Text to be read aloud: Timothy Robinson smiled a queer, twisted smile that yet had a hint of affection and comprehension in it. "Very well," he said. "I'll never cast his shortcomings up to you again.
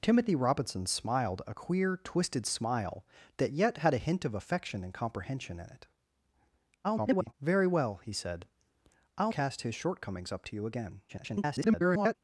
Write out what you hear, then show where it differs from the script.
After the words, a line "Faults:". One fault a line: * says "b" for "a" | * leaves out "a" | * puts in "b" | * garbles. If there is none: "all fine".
Timothy Robinson smiled a queer, twisted smile that yet had a hint of affection and comprehension in it. [garbled] "Very well," he said. "I'll cast his shortcomings up to you again. [garbled]
Faults:
* garbles
* leaves out "never"
* garbles